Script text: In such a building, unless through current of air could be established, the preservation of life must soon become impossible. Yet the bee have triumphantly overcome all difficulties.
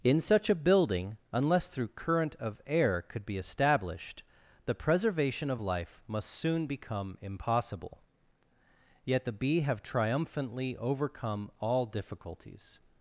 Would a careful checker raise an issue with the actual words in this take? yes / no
no